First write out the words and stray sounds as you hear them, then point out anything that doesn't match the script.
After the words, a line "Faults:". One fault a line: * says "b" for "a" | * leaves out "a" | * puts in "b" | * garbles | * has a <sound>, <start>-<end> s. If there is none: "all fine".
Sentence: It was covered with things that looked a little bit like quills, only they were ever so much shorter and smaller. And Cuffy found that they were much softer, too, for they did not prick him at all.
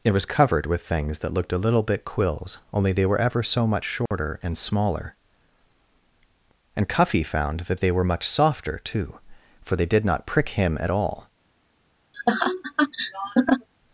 It was covered with things that looked a little bit quills, only they were ever so much shorter and smaller. And Cuffy found that they were much softer, too, for they did not prick him at all.
Faults:
* leaves out "like"
* has a dropout, 4.1-4.1 s
* has a laugh, 12.1-13.7 s